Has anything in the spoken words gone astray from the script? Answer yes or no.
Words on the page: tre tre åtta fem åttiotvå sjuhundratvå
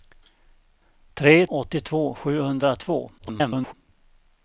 yes